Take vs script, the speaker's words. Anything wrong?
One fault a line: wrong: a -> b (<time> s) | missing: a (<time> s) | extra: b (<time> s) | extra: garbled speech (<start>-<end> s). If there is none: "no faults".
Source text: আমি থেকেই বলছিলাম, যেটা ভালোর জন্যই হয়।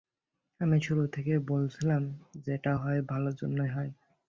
extra: শুরু (0.8 s)
extra: হয় (2.8 s)